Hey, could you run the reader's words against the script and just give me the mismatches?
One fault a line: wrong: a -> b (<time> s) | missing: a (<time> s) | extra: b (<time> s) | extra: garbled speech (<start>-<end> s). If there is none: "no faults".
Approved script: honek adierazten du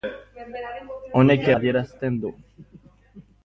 no faults